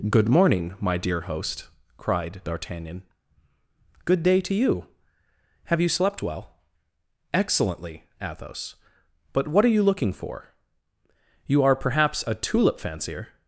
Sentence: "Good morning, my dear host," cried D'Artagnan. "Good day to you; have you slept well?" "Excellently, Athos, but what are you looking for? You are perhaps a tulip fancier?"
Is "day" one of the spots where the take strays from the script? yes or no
no